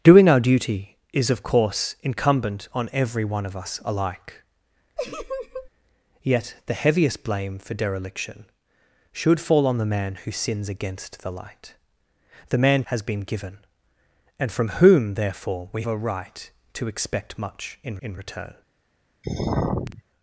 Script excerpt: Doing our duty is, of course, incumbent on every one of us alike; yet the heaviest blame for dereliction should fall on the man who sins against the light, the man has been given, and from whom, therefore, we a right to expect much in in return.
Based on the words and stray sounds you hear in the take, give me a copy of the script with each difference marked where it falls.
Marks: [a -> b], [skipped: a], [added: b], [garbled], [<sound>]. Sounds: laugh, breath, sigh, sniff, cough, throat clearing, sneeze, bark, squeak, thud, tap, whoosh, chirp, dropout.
Doing our duty is, of course, incumbent on every one of us alike; [laugh] yet the heaviest blame for dereliction should fall on the man who sins against the light, the man has been given, and from whom, therefore, we a right to expect much in in return. [sigh]